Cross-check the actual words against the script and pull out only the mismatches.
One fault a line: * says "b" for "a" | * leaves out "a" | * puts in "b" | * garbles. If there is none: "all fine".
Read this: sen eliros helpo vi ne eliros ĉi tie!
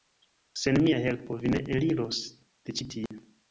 * says "mia" for "eliros"
* puts in "de"